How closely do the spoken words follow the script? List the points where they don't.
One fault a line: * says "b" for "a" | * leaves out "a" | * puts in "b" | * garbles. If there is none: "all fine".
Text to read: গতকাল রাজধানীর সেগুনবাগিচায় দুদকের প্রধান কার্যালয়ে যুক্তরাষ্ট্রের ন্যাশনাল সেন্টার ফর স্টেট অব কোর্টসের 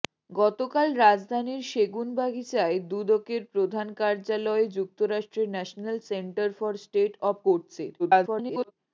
* garbles